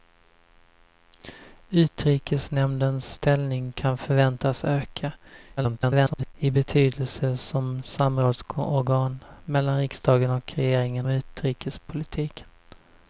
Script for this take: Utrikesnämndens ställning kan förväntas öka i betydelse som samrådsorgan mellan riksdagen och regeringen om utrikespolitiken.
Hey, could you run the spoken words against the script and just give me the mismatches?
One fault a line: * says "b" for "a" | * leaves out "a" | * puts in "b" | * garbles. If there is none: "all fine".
* garbles
* leaves out "om"